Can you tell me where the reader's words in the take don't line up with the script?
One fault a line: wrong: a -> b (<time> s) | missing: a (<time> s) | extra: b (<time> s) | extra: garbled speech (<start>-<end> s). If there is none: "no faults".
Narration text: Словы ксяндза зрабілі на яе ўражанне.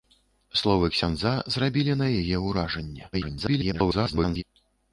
extra: garbled speech (3.1-4.4 s)